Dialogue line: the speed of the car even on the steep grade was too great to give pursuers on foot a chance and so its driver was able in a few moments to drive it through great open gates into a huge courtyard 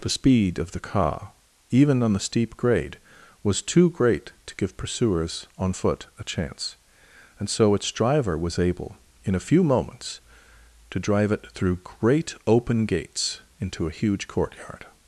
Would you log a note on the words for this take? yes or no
no